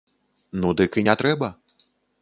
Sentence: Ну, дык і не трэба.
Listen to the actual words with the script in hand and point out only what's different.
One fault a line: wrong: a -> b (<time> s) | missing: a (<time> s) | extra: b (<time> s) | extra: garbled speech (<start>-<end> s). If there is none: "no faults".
no faults